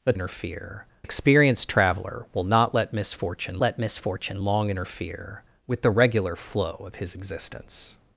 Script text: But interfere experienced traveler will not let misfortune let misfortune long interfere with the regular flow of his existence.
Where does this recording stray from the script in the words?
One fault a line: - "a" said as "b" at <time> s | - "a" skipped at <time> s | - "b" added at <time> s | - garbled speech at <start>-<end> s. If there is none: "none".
none